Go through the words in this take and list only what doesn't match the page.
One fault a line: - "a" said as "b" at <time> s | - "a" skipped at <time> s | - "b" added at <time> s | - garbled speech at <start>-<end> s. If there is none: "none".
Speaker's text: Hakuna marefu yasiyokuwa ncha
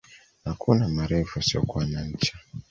- "na" added at 1.9 s